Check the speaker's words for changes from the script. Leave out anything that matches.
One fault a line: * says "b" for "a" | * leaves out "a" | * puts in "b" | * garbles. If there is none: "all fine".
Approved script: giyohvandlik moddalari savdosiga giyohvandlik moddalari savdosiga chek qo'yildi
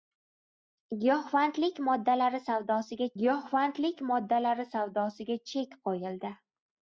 all fine